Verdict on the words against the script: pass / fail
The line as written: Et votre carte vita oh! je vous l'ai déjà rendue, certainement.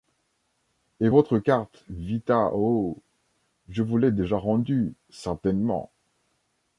pass